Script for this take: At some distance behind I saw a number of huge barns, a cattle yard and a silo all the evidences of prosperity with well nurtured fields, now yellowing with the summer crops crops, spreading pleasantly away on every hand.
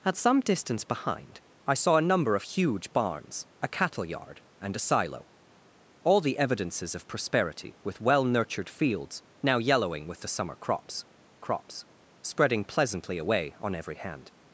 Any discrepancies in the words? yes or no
no